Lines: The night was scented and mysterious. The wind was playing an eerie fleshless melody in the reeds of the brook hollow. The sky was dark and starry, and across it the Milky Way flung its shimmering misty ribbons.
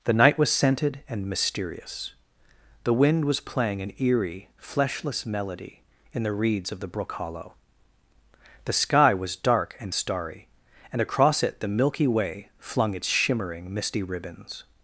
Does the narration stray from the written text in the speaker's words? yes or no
no